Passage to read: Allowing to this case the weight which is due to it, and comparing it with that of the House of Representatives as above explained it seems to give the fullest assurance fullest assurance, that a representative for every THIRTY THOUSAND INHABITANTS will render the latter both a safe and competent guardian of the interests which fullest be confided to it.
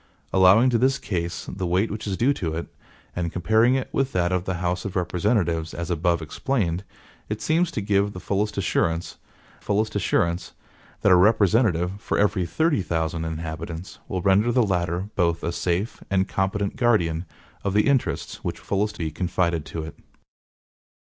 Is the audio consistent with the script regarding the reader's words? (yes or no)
yes